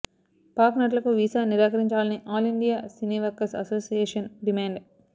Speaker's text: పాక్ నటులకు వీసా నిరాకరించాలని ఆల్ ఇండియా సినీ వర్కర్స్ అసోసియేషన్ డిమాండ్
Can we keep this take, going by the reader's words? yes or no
yes